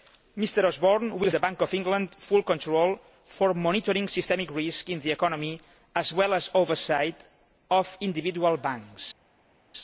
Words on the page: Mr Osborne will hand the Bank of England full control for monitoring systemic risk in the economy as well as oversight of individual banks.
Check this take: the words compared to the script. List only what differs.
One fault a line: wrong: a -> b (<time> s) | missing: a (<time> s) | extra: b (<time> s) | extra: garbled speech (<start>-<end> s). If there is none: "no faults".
missing: hand (1.3 s)